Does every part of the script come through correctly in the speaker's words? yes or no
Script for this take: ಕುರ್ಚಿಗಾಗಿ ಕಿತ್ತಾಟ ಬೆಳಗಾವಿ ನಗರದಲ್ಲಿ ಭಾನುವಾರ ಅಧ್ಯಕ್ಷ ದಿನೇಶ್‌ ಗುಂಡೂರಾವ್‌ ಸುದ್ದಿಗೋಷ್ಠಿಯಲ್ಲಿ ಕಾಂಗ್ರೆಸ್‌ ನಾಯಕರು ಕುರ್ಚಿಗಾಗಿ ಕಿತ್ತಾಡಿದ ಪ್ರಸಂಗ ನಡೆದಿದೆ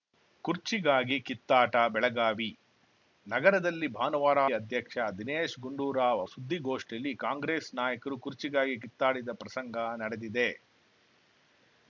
yes